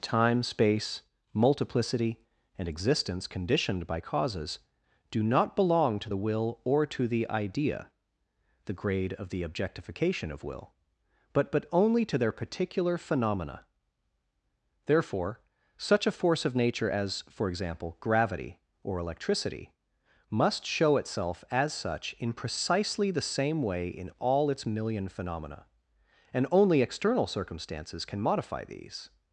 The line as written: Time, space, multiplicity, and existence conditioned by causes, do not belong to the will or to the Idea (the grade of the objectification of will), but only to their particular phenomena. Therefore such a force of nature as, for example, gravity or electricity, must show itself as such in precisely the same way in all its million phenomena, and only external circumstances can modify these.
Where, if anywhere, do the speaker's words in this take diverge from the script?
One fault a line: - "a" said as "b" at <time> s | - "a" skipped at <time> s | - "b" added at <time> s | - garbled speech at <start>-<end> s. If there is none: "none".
- "but" added at 11.5 s